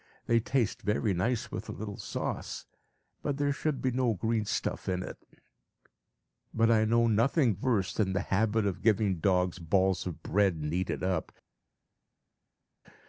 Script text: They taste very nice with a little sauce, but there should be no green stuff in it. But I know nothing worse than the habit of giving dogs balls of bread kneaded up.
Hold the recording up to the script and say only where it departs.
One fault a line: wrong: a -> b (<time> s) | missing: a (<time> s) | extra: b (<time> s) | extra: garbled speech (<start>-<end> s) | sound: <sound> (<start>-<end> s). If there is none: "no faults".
no faults